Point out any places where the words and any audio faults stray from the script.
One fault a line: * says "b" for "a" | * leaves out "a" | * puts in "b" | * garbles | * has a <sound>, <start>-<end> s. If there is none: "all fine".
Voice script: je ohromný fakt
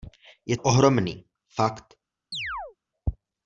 * has a chirp, 2.3-2.8 s